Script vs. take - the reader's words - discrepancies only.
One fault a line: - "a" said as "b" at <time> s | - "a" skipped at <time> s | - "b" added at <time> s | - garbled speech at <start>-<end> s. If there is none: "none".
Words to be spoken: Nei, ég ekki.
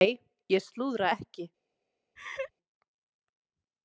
- "slúðra" added at 0.7 s